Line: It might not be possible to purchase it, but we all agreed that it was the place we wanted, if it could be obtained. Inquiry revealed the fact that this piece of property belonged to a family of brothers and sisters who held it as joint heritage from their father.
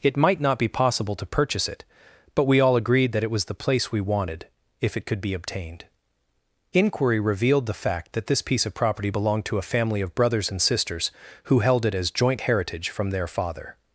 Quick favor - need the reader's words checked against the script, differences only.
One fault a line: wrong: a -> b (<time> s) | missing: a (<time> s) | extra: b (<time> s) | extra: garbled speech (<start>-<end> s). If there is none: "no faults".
no faults